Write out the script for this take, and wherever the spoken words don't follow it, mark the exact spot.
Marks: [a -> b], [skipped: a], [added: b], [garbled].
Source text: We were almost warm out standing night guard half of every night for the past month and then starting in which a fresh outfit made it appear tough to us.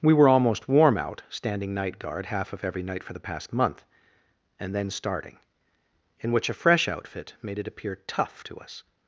We were almost warm out standing night guard half of every night for the past month and then starting in which a fresh outfit made it appear tough to us.